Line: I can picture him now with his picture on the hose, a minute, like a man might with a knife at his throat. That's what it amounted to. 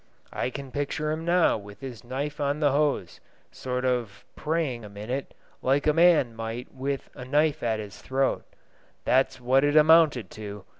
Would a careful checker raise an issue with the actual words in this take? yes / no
yes